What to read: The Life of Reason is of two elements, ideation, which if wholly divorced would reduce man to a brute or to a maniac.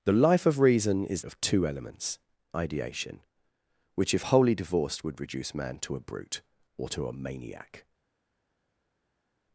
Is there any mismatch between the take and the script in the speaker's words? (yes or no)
no